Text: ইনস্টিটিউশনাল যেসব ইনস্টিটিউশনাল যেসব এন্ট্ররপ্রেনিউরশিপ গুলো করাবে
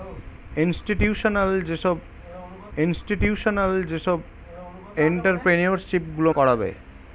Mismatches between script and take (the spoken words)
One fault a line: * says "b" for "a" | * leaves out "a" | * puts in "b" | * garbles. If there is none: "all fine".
all fine